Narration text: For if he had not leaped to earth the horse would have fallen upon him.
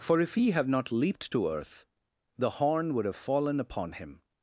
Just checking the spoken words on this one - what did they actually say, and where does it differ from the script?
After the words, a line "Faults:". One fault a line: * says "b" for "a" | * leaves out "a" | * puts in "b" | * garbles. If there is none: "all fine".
For if he have not leaped to earth the horn would have fallen upon him.
Faults:
* says "have" for "had"
* says "horn" for "horse"